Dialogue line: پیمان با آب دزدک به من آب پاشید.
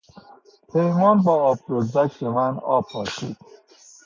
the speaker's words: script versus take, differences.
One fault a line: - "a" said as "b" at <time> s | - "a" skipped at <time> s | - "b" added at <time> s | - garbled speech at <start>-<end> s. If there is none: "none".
none